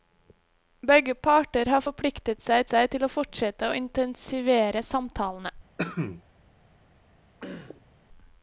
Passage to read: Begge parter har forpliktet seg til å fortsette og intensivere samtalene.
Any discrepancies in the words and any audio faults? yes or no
yes